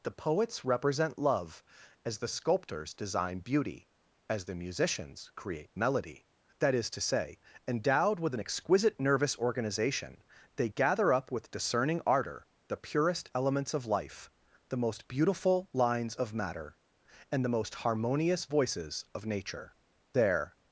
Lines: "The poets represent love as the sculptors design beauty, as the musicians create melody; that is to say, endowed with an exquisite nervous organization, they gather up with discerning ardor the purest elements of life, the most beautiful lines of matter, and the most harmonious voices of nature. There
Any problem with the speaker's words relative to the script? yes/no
no